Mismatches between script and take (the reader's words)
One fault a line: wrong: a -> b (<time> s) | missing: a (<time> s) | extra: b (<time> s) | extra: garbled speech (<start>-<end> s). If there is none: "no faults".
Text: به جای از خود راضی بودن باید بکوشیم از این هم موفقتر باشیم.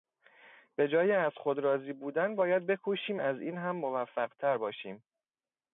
no faults